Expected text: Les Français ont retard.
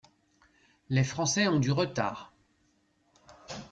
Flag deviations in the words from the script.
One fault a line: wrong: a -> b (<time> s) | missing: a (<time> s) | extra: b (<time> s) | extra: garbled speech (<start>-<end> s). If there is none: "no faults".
extra: du (1.6 s)